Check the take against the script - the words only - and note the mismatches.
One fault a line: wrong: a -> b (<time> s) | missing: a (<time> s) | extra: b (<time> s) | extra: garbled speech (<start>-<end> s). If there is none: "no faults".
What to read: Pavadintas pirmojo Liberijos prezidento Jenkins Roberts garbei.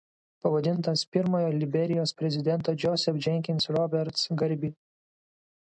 extra: Joseph (2.9 s)